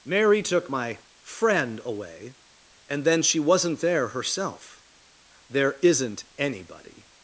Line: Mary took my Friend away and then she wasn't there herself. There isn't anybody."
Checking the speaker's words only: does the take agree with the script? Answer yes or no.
yes